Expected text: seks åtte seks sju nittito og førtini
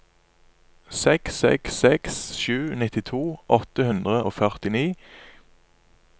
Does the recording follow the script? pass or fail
fail